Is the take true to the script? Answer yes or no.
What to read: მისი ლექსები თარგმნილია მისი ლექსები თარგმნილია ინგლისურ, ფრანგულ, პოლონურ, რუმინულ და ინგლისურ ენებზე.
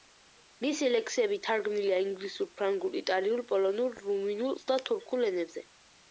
no